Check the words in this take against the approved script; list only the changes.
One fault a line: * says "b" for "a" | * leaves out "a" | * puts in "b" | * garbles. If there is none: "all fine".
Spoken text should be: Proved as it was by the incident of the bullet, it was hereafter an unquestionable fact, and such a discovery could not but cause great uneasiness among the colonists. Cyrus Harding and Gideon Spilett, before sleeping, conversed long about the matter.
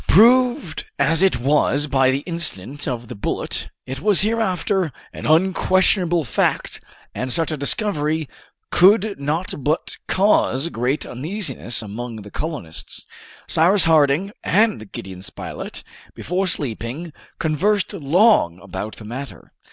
all fine